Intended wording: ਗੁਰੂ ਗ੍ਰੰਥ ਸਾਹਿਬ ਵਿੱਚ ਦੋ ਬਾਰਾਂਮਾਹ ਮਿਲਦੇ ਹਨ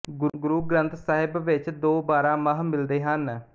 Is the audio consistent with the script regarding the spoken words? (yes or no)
yes